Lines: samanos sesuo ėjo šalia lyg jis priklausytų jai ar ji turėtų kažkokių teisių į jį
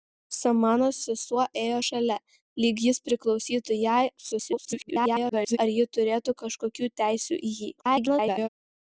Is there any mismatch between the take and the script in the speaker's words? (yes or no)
yes